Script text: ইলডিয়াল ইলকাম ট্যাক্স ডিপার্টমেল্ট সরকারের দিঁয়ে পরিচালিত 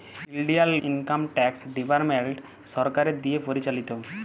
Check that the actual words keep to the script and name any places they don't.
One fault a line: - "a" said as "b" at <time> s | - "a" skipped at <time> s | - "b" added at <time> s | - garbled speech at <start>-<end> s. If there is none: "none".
none